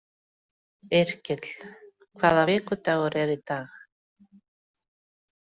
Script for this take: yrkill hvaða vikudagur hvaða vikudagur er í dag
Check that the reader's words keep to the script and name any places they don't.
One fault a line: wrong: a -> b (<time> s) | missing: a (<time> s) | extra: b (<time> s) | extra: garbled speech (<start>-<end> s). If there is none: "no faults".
missing: hvaða vikudagur (3.2 s)